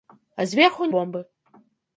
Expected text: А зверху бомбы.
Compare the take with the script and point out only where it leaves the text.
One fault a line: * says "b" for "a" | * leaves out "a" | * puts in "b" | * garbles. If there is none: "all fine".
all fine